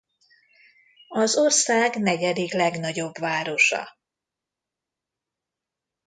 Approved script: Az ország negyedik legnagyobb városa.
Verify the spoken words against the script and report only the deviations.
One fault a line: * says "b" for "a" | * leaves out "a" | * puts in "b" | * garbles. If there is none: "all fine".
all fine